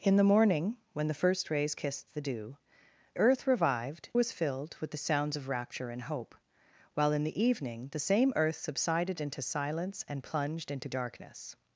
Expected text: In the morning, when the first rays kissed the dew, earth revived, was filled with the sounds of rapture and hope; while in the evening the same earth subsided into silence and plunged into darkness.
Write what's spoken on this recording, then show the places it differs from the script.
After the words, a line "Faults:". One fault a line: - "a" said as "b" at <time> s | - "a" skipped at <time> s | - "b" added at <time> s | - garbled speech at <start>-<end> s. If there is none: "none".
In the morning, when the first rays kissed the dew, earth revived, was filled with the sounds of rapture and hope; while in the evening the same earth subsided into silence and plunged into darkness.
Faults:
none